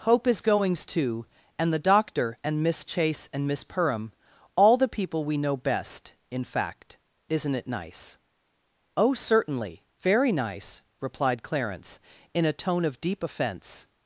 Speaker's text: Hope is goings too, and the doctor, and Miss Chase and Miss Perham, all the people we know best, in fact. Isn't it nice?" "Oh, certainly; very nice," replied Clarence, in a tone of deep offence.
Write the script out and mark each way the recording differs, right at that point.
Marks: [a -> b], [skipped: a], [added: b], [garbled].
Hope is goings too, and the doctor, and Miss Chase and Miss Perham, all the people we know best, in fact. Isn't it nice?" "Oh, certainly; very nice," replied Clarence, in a tone of deep offence.